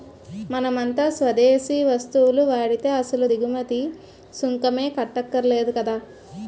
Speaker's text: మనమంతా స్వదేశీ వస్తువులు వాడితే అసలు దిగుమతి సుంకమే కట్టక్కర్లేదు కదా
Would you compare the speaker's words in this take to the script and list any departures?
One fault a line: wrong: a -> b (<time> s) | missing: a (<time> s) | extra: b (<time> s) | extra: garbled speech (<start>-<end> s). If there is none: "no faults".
no faults